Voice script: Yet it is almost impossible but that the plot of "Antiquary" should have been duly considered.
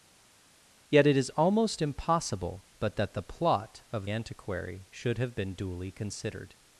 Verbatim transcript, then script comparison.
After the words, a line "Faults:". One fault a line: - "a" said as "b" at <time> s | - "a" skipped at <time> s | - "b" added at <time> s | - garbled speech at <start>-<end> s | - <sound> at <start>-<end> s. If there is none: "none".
Yet it is almost impossible but that the plot of "Antiquary" should have been duly considered.
Faults:
none